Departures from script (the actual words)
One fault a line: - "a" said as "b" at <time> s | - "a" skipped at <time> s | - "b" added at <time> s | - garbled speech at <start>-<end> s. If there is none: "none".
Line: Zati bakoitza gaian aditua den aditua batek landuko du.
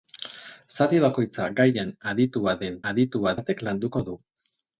none